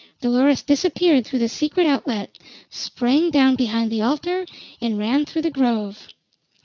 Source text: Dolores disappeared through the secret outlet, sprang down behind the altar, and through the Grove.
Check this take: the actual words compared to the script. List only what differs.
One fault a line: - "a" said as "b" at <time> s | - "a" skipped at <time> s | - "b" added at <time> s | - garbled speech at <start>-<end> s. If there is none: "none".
- "ran" added at 5.0 s